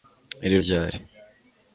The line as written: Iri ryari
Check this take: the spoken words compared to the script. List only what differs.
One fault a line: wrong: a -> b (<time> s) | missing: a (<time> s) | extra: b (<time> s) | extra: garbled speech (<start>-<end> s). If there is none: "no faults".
no faults